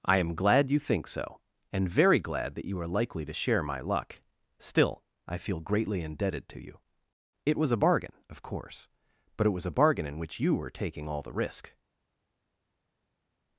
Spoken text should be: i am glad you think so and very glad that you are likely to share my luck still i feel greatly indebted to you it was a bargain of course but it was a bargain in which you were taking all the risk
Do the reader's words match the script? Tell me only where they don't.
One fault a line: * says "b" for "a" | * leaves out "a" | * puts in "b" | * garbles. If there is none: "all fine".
all fine